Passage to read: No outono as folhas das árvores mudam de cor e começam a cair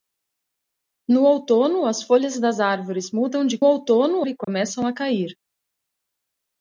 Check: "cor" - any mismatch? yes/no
yes